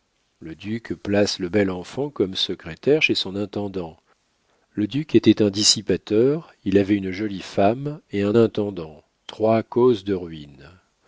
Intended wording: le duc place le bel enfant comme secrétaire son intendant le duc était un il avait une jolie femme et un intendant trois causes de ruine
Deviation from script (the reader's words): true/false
true